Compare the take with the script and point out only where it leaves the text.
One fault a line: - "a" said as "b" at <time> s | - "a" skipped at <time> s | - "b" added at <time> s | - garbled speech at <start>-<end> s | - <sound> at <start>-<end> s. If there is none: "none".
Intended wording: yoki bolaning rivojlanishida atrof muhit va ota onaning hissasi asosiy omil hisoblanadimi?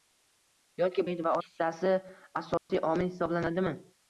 - "bolaning rivojlanishida atrof" skipped at 1.0 s
- "ota onaning" skipped at 1.3 s
- dropout at 2.6-2.7 s